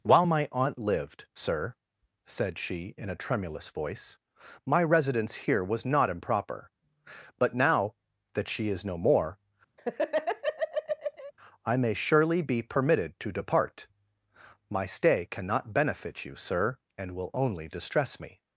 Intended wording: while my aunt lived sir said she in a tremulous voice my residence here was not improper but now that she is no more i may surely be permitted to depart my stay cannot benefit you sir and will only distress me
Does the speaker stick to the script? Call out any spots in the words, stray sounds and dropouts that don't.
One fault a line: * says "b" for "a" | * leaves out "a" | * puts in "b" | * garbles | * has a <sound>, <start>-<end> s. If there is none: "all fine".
* has a laugh, 9.8-11.3 s